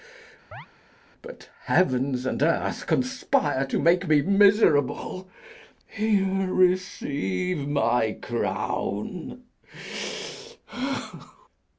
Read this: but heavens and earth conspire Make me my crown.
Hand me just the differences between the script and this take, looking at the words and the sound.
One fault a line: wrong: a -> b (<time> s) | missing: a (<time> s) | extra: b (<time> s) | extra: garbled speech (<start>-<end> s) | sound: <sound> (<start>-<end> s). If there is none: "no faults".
sound: chirp (0.5-0.7 s)
extra: To (3.6 s)
extra: miserable Here receive (4.2 s)